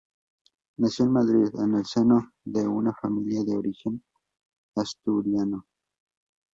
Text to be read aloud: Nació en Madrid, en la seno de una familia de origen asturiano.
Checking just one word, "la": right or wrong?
wrong